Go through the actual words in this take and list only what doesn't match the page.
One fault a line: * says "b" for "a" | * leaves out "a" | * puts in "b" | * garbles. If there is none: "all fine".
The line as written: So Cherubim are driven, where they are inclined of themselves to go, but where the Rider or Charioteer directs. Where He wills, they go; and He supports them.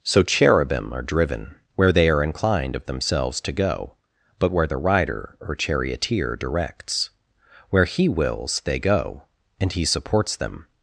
all fine